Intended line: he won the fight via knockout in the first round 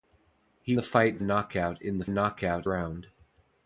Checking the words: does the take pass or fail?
fail